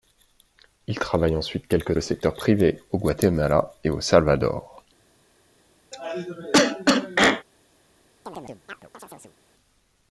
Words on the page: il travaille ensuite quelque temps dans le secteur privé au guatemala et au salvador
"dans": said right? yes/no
no